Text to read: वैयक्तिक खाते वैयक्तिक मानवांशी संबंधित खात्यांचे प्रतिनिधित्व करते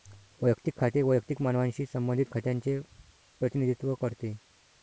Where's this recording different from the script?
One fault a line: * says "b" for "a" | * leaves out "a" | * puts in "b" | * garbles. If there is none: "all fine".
all fine